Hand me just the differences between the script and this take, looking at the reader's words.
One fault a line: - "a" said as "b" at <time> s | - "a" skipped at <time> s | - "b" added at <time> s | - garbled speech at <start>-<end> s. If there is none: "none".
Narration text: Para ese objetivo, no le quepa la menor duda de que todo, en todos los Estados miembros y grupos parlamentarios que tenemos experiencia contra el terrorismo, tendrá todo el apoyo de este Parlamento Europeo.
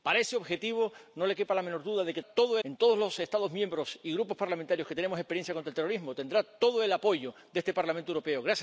none